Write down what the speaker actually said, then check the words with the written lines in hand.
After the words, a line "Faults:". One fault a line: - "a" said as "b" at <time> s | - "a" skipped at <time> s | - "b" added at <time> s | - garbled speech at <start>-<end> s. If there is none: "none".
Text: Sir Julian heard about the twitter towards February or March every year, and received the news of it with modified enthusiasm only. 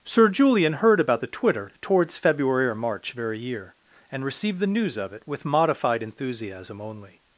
Sir Julian heard about the twitter towards February or March very year, and received the news of it with modified enthusiasm only.
Faults:
- "every" said as "very" at 3.1 s